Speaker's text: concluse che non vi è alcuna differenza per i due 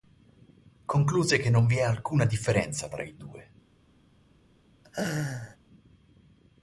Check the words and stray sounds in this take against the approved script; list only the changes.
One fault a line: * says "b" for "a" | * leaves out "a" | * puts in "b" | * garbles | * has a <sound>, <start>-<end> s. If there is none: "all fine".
* says "tra" for "per"
* has a laugh, 4.8-5.6 s